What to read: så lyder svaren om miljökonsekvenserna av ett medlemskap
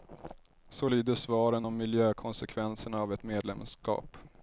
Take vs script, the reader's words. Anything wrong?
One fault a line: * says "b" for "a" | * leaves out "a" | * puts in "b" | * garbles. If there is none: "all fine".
all fine